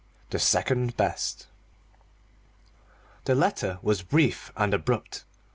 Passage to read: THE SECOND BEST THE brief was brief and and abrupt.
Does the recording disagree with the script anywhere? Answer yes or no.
yes